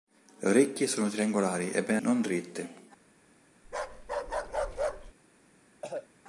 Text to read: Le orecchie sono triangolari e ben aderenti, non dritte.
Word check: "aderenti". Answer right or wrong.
wrong